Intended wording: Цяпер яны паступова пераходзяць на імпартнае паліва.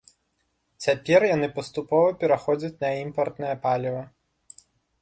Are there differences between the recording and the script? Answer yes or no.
no